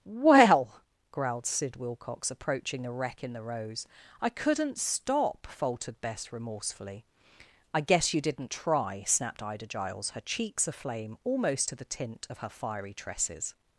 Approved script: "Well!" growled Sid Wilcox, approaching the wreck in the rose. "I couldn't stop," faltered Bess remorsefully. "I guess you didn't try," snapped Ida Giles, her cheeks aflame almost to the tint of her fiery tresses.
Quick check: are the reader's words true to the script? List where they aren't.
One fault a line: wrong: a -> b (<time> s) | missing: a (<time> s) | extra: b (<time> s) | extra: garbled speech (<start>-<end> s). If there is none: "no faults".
no faults